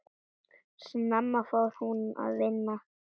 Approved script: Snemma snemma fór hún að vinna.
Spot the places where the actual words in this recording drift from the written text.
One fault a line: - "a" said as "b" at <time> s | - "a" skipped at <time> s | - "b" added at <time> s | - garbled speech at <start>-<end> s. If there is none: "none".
- "snemma" skipped at 1.4 s